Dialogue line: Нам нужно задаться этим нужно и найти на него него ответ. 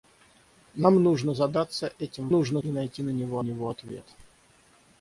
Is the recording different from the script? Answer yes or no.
no